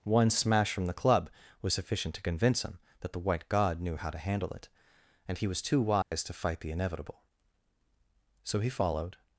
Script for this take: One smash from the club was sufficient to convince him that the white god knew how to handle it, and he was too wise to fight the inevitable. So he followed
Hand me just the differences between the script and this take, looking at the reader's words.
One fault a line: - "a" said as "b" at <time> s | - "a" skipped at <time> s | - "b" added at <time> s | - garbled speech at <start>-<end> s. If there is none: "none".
none